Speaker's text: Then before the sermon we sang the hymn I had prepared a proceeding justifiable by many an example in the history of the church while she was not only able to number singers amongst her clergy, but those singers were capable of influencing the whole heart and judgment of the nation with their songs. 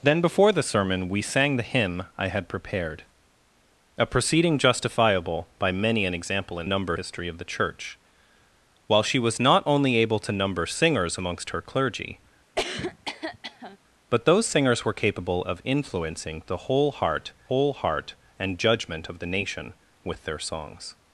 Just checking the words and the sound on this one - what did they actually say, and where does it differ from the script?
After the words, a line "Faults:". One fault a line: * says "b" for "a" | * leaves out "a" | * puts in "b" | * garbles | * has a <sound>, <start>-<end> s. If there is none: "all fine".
Then before the sermon we sang the hymn I had prepared a proceeding justifiable by many an example in number history of the church while she was not only able to number singers amongst her clergy, but those singers were capable of influencing the whole heart whole heart and judgment of the nation with their songs.
Faults:
* says "number" for "the"
* has a cough, 12.6-13.8 s
* puts in "whole heart"